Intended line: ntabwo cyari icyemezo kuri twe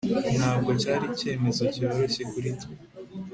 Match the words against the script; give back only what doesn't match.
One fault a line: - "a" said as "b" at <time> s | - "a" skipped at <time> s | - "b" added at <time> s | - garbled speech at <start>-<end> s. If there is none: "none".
- "cyoroshye" added at 1.7 s